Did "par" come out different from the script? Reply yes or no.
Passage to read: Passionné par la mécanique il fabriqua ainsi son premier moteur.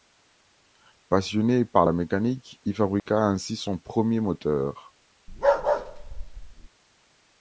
no